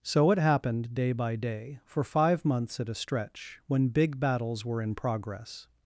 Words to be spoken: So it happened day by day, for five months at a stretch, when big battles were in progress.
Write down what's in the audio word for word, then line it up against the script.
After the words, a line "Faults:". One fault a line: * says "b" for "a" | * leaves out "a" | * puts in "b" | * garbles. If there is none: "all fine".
So it happened day by day, for five months at a stretch, when big battles were in progress.
Faults:
all fine